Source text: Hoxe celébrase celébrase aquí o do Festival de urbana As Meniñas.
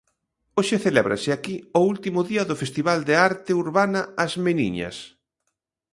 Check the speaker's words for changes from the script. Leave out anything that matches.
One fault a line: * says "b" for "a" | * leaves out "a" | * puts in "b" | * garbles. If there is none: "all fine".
* leaves out "celébrase"
* puts in "último día"
* puts in "arte"